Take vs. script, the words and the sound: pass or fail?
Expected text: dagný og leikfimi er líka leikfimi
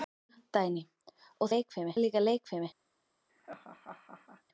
fail